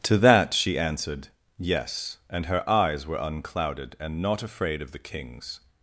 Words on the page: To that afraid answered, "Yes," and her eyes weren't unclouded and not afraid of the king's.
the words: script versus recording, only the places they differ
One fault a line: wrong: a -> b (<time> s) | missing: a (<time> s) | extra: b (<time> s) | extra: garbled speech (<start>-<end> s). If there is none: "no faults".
wrong: afraid -> she (0.5 s)
wrong: weren't -> were (3.0 s)